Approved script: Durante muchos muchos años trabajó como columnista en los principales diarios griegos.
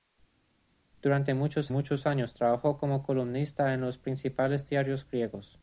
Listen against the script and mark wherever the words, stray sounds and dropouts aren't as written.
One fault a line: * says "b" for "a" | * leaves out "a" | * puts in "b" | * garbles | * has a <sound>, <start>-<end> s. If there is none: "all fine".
all fine